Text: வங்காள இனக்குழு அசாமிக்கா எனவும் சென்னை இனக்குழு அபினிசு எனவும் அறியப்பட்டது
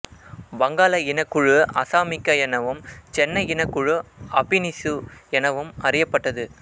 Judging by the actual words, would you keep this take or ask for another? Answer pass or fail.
pass